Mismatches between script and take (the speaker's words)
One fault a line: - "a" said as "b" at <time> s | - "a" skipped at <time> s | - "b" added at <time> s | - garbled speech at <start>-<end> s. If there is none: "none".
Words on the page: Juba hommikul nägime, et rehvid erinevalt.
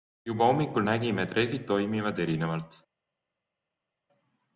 - "toimivad" added at 1.7 s